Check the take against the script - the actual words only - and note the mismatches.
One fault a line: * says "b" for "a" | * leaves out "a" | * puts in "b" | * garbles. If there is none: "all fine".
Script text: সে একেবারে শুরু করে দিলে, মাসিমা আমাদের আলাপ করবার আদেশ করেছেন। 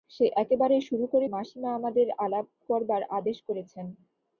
* leaves out "দিলে"